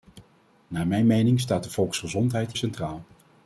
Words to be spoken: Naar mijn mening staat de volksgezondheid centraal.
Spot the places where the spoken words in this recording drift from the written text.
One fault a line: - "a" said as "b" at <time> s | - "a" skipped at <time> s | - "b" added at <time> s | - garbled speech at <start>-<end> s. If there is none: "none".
none